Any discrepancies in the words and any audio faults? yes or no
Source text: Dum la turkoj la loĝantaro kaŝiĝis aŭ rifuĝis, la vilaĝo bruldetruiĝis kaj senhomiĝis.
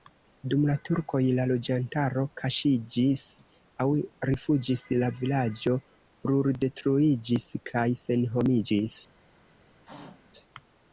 yes